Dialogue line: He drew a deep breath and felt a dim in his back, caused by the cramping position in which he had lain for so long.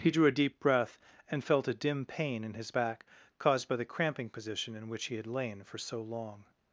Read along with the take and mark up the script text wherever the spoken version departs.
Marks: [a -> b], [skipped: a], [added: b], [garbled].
He drew a deep breath and felt a dim [added: pain] in his back, caused by the cramping position in which he had lain for so long.